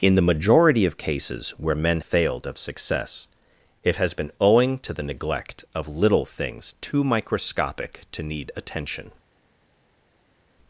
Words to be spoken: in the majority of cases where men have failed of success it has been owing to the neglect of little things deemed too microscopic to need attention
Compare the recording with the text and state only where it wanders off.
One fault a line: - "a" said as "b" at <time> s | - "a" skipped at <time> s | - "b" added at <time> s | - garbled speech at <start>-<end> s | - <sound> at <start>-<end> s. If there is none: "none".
- "have" skipped at 2.0 s
- "deemed" skipped at 6.7 s